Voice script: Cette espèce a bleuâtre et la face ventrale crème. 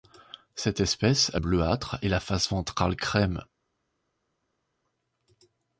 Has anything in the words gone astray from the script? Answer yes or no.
no